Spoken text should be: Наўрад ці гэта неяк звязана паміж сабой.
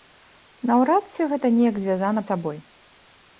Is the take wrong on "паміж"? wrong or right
wrong